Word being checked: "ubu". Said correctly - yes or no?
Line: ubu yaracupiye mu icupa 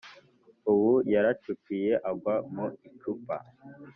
yes